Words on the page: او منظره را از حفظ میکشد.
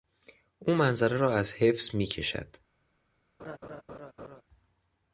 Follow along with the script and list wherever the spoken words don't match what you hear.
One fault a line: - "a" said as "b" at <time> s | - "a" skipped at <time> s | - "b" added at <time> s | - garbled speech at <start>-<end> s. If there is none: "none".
none